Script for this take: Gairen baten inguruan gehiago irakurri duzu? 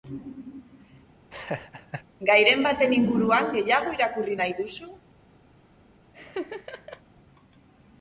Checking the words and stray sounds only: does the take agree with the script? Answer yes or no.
no